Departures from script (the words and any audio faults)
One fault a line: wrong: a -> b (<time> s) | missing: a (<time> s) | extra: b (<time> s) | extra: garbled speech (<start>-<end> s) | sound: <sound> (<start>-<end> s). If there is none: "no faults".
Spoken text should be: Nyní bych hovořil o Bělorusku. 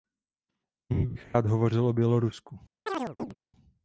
extra: rád (1.3 s)
sound: chirp (2.9-3.4 s)